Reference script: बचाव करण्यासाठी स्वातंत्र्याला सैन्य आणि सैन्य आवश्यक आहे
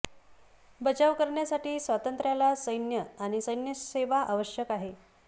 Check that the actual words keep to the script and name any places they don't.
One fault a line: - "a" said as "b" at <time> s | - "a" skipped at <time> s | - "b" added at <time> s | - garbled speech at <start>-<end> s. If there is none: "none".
- "सेवा" added at 3.8 s